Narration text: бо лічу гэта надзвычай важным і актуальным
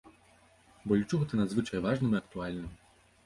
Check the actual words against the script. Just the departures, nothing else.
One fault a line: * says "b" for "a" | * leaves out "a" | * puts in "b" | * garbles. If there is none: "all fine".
all fine